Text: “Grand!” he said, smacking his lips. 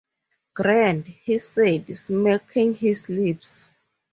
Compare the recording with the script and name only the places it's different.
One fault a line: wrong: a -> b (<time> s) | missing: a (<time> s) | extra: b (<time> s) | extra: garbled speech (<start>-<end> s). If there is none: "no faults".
no faults